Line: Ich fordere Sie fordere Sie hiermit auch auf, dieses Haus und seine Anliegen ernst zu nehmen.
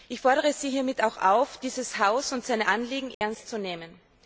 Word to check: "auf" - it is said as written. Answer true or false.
true